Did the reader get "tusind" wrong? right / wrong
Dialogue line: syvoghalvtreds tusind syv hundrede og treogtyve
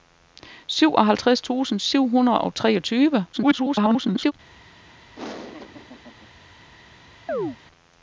right